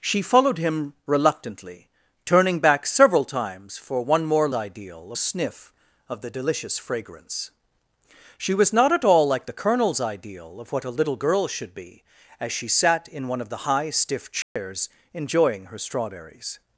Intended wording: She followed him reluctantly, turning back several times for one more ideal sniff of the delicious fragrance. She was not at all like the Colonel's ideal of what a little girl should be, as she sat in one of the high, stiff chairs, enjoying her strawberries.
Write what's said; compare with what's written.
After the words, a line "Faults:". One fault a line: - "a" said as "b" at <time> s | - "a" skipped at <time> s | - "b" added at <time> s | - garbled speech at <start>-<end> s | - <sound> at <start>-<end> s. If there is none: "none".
She followed him reluctantly, turning back several times for one more ideal sniff of the delicious fragrance. She was not at all like the Colonel's ideal of what a little girl should be, as she sat in one of the high, stiff chairs, enjoying her strawberries.
Faults:
- dropout at 14.4-14.6 s